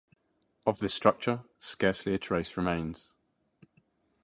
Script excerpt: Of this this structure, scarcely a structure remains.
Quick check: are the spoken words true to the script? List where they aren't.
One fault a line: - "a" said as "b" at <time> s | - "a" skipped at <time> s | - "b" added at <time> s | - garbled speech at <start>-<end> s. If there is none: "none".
- "this" skipped at 0.9 s
- "structure" said as "trace" at 2.2 s